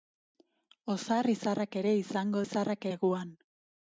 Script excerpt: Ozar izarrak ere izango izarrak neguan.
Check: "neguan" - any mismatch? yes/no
no